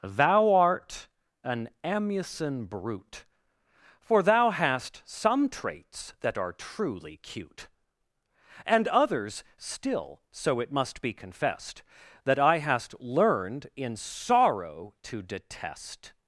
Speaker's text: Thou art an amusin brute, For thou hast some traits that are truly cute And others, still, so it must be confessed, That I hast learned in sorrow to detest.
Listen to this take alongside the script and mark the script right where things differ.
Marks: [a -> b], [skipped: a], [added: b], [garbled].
Thou art an amusin brute, For thou hast some traits that are truly cute And others, still, so it must be confessed, That I hast learned in sorrow to detest.